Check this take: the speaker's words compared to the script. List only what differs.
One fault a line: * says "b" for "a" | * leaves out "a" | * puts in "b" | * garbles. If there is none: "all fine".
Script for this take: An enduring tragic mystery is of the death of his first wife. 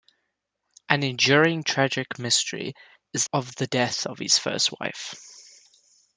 all fine